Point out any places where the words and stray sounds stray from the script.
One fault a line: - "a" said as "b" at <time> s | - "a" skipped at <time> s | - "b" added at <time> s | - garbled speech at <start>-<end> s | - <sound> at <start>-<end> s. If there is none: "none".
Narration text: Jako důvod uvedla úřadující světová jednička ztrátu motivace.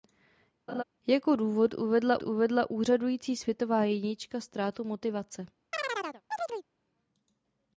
- laugh at 0.7-0.8 s
- "uvedla" added at 2.2 s
- chirp at 5.7-6.7 s